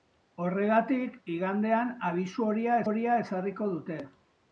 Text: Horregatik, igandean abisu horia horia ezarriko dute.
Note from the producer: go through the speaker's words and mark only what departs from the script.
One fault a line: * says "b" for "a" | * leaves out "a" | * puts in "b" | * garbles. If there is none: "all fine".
all fine